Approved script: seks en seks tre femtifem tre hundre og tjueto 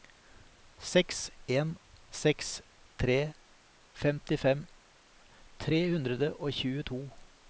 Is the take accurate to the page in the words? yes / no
yes